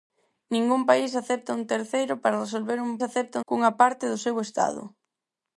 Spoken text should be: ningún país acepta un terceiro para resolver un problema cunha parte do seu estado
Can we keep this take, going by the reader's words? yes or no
no